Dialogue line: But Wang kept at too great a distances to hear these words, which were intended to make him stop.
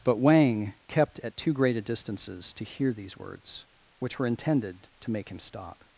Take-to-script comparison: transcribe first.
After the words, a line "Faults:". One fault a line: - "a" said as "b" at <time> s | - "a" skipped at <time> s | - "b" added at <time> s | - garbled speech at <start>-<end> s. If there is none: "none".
But Wang kept at too great a distances to hear these words, which were intended to make him stop.
Faults:
none